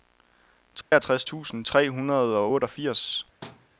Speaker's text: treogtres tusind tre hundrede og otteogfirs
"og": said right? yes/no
yes